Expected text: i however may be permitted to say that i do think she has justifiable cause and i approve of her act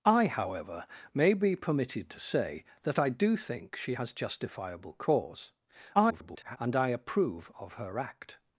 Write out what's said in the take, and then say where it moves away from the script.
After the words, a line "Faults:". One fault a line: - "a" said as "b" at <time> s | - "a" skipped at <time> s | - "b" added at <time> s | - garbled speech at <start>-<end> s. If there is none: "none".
i however may be permitted to say that i do think she has justifiable cause [garbled] and i approve of her act
Faults:
- garbled speech at 5.9-6.6 s